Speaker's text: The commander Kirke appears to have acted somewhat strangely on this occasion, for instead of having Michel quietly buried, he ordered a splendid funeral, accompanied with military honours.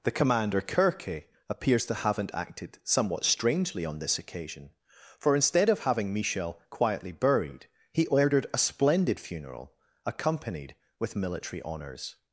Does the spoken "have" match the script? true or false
false